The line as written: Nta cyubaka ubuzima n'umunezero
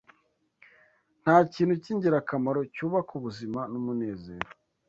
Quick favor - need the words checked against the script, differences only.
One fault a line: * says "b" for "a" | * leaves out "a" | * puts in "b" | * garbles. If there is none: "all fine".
* puts in "kintu cy'ingirakamaro"